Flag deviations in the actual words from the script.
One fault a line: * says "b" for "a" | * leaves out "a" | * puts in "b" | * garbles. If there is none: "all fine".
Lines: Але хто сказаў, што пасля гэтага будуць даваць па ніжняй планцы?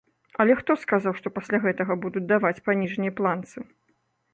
all fine